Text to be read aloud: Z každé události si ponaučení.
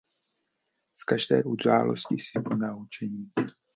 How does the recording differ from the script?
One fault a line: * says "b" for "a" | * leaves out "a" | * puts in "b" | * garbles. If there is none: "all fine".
all fine